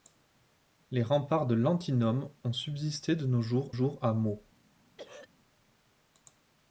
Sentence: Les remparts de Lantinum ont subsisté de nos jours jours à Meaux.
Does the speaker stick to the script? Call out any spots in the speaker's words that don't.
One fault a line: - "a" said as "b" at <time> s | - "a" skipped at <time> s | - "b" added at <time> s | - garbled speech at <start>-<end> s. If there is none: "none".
none